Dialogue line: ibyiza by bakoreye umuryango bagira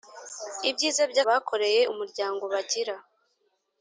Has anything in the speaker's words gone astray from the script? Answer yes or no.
no